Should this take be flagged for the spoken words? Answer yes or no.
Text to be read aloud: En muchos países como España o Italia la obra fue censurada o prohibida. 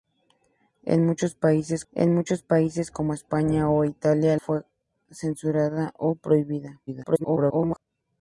yes